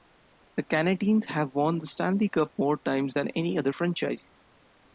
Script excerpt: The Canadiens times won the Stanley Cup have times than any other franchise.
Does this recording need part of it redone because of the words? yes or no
yes